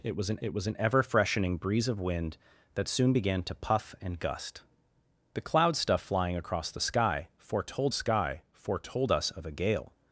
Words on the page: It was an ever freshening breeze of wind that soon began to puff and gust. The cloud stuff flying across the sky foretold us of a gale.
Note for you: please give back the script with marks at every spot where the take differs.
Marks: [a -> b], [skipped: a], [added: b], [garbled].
It was an [added: it was an] ever freshening breeze of wind that soon began to puff and gust. The cloud stuff flying across the sky foretold [added: sky foretold] us of a gale.